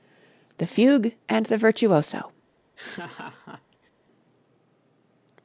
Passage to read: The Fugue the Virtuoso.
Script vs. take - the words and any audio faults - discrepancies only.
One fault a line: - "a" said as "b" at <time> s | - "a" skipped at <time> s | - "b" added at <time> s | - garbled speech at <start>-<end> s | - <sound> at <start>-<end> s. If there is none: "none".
- "and" added at 1.3 s
- laugh at 2.8-3.9 s